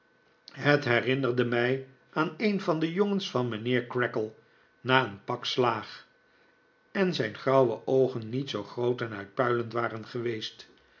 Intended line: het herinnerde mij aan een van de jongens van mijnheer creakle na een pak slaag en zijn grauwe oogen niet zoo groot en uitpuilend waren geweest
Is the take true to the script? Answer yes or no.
yes